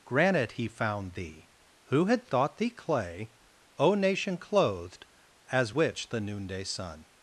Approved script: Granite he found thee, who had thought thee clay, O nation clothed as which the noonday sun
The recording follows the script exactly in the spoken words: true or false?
true